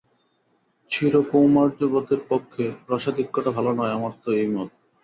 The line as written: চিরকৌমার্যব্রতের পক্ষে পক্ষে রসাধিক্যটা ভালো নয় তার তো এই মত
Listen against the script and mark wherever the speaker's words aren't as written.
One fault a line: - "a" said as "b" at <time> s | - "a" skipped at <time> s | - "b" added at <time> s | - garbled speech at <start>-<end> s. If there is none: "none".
- "পক্ষে" skipped at 2.6 s
- "তার" said as "আমার" at 3.9 s